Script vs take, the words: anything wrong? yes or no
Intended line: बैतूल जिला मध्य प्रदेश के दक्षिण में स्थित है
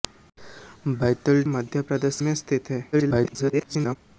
yes